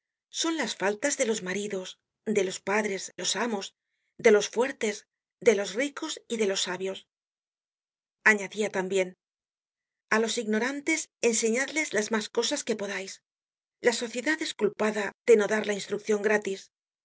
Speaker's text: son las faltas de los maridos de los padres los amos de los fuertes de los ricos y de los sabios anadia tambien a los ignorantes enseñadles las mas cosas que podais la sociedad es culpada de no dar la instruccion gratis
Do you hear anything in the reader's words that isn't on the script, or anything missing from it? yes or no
no